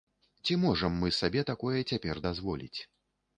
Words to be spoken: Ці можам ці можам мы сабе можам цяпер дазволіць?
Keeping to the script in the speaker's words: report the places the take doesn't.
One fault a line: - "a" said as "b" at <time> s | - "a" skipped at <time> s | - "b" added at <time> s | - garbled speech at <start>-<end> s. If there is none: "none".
- "ці можам" skipped at 0.9 s
- "можам" said as "такое" at 1.5 s